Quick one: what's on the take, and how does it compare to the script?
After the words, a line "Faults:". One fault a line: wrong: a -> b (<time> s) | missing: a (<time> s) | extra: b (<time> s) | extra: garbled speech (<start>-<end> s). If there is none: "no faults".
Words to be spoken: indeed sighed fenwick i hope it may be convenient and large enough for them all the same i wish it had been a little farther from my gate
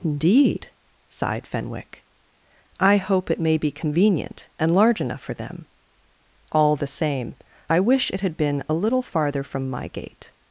indeed sighed fenwick i hope it may be convenient and large enough for them all the same i wish it had been a little farther from my gate
Faults:
no faults